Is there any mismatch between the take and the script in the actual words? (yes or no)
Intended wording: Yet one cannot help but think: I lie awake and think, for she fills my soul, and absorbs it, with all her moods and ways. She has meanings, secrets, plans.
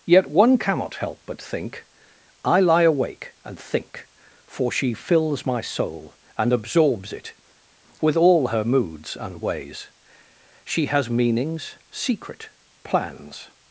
yes